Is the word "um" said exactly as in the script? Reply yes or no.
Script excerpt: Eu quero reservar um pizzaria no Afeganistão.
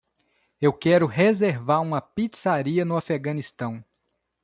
no